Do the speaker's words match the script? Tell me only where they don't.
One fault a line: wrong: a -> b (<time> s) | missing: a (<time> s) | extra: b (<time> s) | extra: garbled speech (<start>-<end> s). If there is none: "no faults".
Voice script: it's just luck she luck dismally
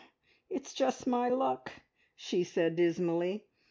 extra: my (1.1 s)
wrong: luck -> said (2.4 s)